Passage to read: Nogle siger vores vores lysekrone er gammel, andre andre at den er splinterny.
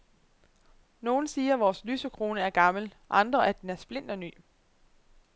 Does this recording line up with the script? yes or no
no